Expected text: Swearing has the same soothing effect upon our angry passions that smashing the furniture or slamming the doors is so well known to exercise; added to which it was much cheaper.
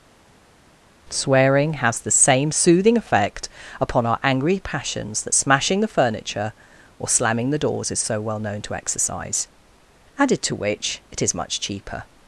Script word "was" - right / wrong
wrong